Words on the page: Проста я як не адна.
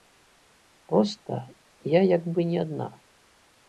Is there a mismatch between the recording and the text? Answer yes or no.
yes